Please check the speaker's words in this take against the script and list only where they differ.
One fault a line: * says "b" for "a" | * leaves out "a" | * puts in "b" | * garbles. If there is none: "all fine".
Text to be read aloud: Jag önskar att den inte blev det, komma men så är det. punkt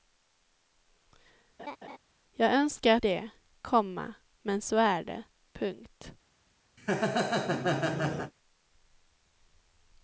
* leaves out "den inte blev"